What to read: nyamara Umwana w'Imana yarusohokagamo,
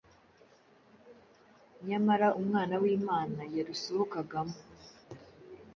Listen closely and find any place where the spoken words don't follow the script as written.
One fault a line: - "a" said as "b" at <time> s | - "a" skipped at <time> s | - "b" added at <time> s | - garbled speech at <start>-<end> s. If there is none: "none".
none